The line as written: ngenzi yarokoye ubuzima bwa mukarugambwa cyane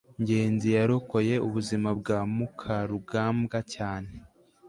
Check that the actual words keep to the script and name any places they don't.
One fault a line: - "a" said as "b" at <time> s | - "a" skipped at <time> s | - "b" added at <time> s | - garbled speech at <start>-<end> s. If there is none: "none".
none